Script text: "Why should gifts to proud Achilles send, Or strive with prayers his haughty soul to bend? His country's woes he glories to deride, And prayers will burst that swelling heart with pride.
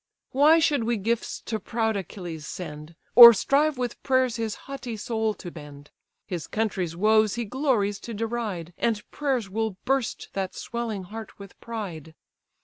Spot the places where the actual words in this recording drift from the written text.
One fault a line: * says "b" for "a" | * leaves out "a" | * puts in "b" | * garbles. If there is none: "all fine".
* puts in "we"